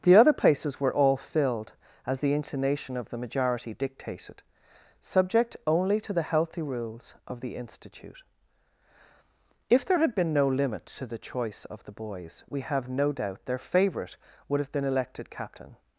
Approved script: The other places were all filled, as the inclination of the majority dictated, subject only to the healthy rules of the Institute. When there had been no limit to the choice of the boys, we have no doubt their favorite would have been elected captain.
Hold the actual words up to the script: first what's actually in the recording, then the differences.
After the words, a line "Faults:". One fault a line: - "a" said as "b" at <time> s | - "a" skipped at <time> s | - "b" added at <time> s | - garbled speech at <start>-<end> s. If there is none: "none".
The other places were all filled, as the inclination of the majority dictated, subject only to the healthy rules of the Institute. If there had been no limit to the choice of the boys, we have no doubt their favorite would have been elected captain.
Faults:
- "When" said as "If" at 9.7 s